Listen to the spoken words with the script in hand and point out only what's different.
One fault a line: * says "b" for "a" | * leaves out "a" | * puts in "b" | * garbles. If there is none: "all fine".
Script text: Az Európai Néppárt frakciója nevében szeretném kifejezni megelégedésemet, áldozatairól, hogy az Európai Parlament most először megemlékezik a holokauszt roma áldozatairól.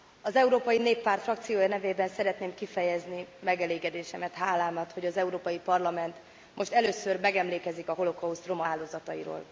* says "hálámat" for "áldozatairól"